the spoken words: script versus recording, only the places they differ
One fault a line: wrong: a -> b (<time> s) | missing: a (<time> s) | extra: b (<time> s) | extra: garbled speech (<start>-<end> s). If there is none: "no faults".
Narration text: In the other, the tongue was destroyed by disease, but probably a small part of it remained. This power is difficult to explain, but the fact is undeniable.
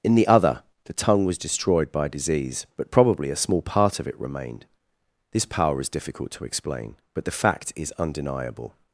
no faults